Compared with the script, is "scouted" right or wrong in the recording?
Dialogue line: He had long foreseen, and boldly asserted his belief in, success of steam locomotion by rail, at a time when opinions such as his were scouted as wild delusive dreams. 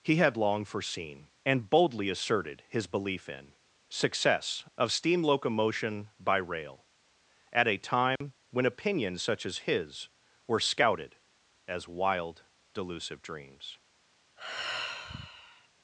right